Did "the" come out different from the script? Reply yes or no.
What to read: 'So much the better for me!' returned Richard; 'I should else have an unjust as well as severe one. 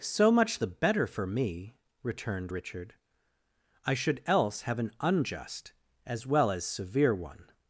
no